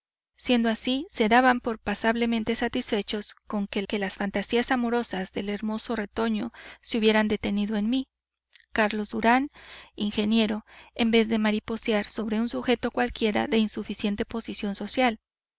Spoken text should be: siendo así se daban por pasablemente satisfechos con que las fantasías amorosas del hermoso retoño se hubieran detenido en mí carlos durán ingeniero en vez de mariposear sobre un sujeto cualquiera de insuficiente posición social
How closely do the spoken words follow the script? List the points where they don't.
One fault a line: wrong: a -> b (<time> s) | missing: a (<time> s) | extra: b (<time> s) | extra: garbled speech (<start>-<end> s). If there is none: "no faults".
extra: que (3.8 s)